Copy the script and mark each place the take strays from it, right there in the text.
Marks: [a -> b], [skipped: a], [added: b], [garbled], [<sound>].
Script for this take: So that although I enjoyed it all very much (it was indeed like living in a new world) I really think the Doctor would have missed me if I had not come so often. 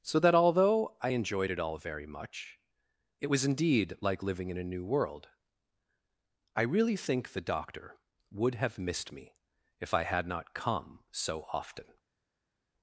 So that although I enjoyed it all very much (it was indeed like living in a new world) I really think the Doctor would have missed me if I had not come so often.